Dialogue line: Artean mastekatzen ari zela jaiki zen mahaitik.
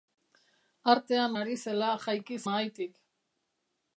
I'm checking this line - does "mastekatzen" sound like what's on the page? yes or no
no